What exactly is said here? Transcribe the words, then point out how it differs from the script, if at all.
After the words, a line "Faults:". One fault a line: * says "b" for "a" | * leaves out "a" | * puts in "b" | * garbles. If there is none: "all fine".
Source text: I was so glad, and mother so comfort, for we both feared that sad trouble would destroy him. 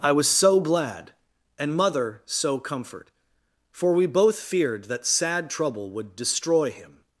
I was so glad, and mother so comfort, for we both feared that sad trouble would destroy him.
Faults:
all fine